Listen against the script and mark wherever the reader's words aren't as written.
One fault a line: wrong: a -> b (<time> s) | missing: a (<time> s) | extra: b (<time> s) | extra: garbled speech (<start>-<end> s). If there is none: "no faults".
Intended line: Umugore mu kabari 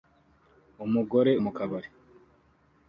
no faults